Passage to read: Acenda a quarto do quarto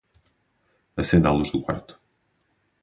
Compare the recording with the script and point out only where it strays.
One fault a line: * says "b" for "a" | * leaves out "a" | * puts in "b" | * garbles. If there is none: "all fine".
* says "luz" for "quarto"